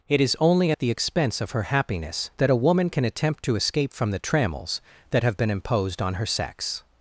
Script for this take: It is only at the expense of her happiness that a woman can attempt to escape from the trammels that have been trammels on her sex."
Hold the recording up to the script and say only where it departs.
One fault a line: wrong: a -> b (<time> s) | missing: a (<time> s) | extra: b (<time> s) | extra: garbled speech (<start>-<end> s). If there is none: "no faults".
wrong: trammels -> imposed (5.5 s)